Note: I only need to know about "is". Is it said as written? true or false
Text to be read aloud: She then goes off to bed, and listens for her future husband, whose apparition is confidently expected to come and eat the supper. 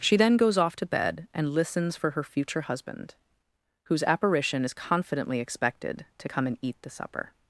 true